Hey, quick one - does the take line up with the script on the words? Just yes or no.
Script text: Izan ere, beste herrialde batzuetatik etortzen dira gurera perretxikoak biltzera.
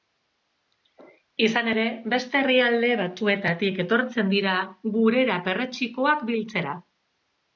yes